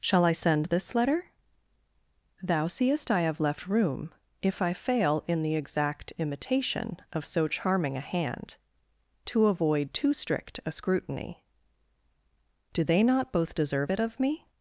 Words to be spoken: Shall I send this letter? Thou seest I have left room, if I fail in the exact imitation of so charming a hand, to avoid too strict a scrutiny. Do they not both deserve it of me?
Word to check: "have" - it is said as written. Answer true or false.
true